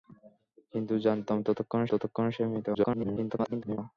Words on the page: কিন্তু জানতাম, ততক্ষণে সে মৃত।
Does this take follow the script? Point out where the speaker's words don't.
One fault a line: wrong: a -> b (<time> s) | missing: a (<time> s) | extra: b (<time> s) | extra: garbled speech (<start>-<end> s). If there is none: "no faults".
extra: ততক্ষণে (1.9 s)
extra: garbled speech (2.7-3.8 s)